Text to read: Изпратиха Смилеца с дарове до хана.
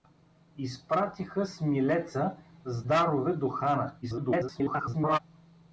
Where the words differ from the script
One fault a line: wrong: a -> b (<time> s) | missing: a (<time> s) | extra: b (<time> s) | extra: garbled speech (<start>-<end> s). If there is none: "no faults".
extra: garbled speech (4.0-5.2 s)